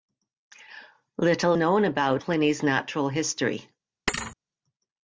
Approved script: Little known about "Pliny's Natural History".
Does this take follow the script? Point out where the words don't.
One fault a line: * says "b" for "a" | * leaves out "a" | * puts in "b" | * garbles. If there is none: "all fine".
all fine